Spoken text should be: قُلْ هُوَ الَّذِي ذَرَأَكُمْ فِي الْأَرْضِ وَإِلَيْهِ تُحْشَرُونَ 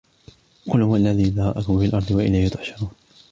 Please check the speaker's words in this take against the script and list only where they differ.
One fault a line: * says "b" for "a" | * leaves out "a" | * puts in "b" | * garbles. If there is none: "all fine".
all fine